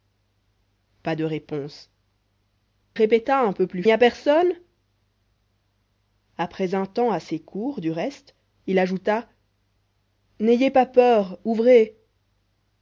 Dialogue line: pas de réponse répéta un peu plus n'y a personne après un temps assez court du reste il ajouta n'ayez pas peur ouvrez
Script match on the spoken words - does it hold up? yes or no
yes